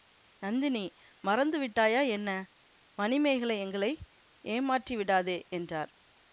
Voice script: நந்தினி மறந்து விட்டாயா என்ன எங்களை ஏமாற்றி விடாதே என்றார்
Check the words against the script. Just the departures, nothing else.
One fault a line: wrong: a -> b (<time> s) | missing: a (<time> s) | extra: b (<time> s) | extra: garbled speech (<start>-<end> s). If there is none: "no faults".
extra: மணிமேகலை (3.0 s)